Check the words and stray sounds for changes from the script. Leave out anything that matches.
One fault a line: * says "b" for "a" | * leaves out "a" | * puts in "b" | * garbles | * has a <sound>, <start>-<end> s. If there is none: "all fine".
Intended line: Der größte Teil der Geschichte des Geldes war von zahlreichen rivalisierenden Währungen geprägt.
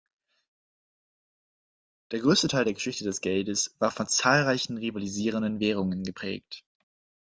all fine